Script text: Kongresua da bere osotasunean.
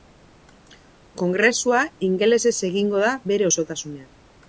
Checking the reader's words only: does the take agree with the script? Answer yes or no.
no